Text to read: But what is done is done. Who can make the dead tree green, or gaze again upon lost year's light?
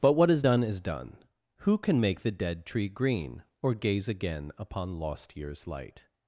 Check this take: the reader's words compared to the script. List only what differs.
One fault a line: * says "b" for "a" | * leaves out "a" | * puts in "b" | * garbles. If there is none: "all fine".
all fine